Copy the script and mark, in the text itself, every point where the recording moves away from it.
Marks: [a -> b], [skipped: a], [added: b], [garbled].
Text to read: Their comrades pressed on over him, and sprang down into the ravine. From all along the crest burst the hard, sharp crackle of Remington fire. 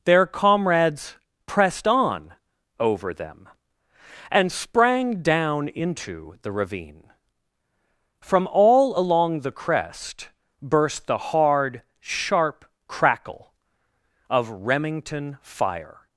Their comrades pressed on over [him, -> them] and sprang down into the ravine. From all along the crest burst the hard, sharp crackle of Remington fire.